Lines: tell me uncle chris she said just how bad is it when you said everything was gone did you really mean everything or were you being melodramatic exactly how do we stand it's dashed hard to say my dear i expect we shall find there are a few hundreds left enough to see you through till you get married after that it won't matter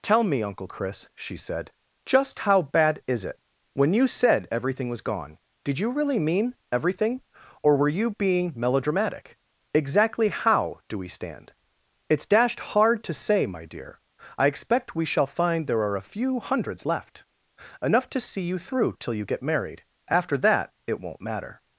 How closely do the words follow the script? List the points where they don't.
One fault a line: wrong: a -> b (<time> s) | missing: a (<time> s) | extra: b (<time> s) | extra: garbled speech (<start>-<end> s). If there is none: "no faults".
no faults